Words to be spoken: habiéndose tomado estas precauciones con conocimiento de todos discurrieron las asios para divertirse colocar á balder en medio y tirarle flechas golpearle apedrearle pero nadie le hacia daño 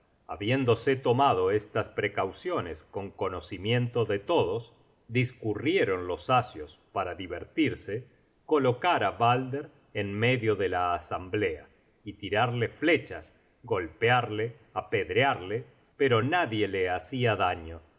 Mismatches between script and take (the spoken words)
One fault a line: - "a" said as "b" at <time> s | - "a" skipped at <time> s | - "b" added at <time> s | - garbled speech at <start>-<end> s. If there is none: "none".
- "las" said as "los" at 6.1 s
- "de la asamblea" added at 10.5 s